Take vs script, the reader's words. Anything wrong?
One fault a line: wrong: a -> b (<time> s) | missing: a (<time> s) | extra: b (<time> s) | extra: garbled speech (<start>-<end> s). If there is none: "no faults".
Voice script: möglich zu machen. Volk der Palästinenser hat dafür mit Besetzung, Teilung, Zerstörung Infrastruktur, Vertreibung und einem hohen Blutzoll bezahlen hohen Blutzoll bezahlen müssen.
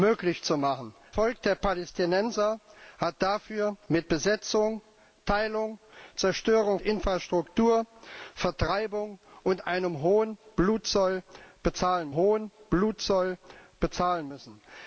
no faults